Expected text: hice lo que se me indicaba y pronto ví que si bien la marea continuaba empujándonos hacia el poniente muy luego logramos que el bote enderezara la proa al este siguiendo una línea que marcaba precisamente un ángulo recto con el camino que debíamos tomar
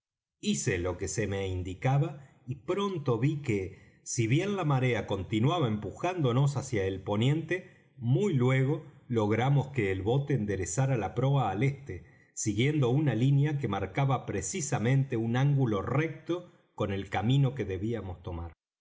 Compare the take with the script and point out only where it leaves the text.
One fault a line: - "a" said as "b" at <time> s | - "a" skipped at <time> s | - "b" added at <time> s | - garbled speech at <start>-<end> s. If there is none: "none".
none